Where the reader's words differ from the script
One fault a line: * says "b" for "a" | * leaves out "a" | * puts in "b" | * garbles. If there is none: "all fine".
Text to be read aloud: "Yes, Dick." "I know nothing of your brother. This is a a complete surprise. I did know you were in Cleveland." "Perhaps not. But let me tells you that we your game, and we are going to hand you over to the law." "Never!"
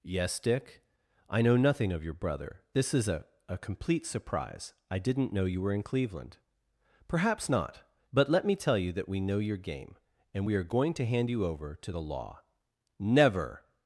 * says "didn't" for "did"
* says "tell" for "tells"
* puts in "know"